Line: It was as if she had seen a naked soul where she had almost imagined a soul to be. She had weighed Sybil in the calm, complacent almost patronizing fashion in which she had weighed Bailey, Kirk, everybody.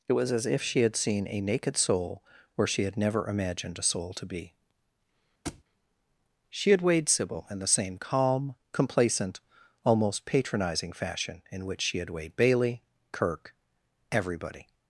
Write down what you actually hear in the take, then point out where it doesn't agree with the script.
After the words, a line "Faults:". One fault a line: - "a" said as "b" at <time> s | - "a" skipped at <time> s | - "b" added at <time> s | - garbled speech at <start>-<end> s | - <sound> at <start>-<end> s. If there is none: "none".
It was as if she had seen a naked soul where she had never imagined a soul to be. She had weighed Sybil in the same calm, complacent almost patronizing fashion in which she had weighed Bailey, Kirk, everybody.
Faults:
- "almost" said as "never" at 3.0 s
- thud at 5.4-5.6 s
- "same" added at 7.7 s